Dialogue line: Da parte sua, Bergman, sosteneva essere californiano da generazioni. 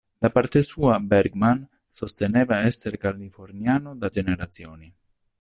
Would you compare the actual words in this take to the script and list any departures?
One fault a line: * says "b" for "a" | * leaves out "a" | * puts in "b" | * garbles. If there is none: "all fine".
all fine